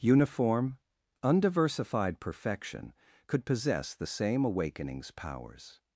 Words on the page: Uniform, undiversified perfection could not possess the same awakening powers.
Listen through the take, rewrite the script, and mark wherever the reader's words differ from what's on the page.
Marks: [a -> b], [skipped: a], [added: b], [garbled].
Uniform, undiversified perfection could [skipped: not] possess the same [awakening -> awakenings] powers.